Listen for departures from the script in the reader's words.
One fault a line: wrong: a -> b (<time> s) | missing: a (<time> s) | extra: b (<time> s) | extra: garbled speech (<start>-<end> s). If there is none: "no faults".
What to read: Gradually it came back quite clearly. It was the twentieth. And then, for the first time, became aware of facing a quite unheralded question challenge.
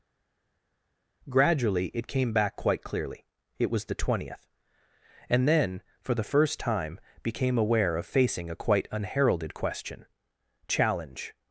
no faults